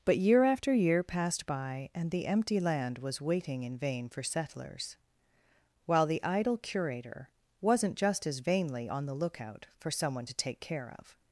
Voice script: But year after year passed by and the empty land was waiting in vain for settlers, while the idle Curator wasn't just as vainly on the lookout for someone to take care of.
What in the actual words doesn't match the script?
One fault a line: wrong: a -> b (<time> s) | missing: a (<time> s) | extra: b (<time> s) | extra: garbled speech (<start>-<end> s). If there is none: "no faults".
no faults